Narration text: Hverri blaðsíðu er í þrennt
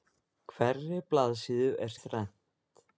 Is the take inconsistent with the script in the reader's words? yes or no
no